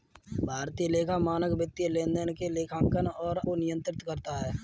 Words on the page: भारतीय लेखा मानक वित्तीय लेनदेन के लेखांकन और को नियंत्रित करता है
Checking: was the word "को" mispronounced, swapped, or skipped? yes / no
no